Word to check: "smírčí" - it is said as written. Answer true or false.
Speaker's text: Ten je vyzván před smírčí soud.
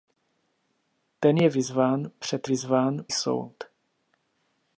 false